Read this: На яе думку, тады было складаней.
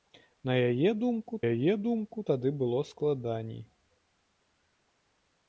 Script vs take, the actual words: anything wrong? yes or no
yes